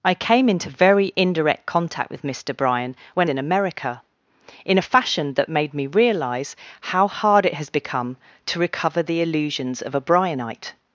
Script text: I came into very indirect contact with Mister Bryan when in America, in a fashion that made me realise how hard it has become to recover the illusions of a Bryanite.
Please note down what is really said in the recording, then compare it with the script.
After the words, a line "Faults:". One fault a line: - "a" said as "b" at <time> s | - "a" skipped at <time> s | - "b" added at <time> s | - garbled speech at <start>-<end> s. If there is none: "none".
I came into very indirect contact with Mister Bryan when in America, in a fashion that made me realise how hard it has become to recover the illusions of a Bryanite.
Faults:
none